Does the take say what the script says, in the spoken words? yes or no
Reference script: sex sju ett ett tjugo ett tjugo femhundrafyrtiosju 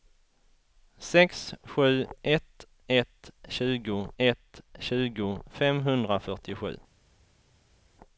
yes